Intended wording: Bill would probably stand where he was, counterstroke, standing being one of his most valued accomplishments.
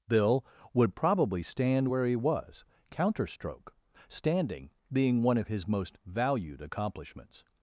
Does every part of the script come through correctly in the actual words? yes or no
yes